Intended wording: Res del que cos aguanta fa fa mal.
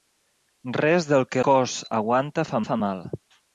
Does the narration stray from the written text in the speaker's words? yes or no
no